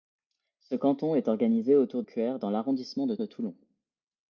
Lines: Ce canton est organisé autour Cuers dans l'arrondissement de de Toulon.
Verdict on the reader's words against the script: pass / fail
pass